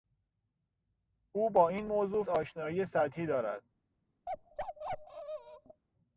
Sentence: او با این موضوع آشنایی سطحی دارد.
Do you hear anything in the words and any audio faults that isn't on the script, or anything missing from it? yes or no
yes